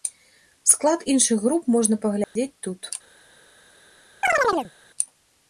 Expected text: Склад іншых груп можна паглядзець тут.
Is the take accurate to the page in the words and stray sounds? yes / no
no